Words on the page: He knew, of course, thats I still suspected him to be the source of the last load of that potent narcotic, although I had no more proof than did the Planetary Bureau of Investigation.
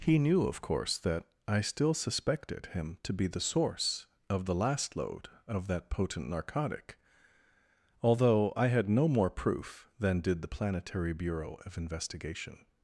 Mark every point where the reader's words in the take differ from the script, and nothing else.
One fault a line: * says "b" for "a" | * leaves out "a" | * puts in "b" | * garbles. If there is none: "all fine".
* says "that" for "thats"